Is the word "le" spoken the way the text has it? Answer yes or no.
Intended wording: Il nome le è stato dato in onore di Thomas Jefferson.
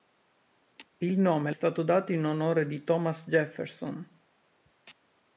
no